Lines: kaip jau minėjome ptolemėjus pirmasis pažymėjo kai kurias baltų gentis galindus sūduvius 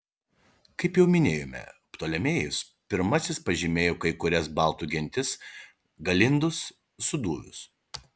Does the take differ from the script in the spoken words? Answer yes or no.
no